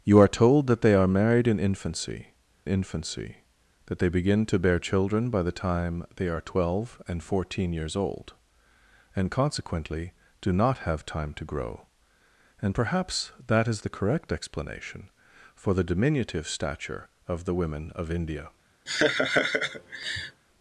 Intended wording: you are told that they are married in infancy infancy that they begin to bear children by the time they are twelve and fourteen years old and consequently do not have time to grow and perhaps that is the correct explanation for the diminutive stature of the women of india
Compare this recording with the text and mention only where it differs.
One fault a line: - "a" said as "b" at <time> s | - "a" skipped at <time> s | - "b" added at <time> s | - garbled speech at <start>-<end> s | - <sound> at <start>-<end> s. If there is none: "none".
- laugh at 18.9-20.4 s